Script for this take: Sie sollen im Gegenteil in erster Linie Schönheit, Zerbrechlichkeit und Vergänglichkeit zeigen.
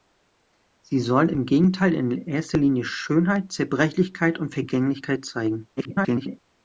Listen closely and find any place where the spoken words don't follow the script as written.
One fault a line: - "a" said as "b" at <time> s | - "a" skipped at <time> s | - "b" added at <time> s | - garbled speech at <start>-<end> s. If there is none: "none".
- garbled speech at 5.8-6.4 s